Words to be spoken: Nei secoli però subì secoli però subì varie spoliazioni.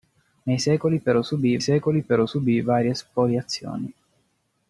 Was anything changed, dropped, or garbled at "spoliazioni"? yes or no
no